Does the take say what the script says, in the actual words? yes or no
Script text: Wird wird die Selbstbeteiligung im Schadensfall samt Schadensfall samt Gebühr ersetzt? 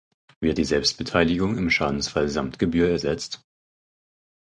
no